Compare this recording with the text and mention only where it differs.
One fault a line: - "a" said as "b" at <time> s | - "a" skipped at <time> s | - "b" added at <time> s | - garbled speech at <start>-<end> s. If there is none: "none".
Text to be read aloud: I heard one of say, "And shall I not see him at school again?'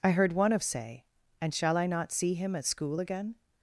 none